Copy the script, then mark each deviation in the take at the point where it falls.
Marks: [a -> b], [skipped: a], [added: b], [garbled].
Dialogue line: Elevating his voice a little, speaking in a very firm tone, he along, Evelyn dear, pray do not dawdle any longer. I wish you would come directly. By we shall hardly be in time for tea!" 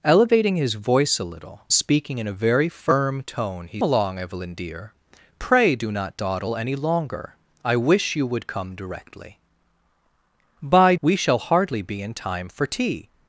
Elevating his voice a little, speaking in a very firm tone, he along, Evelyn dear, pray do not dawdle any longer. I wish you would come directly. By we shall hardly be in time for tea!"